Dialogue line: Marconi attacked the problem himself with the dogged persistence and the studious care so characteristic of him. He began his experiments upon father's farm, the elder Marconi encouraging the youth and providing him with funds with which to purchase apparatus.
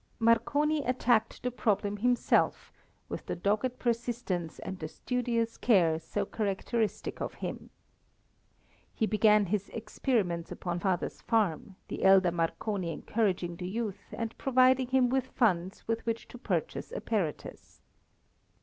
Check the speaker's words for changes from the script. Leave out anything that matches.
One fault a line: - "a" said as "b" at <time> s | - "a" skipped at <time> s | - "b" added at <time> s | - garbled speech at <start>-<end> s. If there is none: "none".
none